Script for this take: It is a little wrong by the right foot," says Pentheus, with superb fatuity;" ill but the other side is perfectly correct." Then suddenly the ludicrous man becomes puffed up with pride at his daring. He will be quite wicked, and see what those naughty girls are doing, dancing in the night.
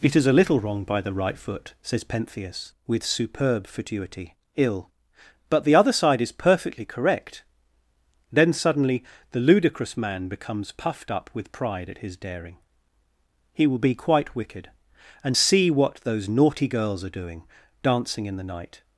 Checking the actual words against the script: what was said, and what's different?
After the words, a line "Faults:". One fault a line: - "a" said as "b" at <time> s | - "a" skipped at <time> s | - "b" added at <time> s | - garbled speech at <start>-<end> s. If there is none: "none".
It is a little wrong by the right foot," says Pentheus, with superb fatuity;" ill but the other side is perfectly correct." Then suddenly the ludicrous man becomes puffed up with pride at his daring. He will be quite wicked, and see what those naughty girls are doing, dancing in the night.
Faults:
none